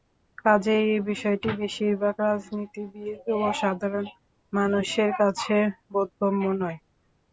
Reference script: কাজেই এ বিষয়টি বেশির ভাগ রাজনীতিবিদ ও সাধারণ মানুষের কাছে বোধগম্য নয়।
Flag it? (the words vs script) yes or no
no